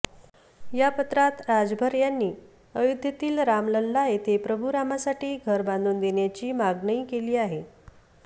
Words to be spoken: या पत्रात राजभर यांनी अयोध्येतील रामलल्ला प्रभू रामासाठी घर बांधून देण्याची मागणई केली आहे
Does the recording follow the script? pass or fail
fail